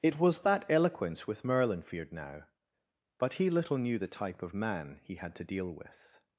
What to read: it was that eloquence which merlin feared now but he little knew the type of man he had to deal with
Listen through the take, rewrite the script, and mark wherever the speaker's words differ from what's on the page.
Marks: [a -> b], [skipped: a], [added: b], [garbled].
it was that eloquence [which -> with] merlin feared now but he little knew the type of man he had to deal with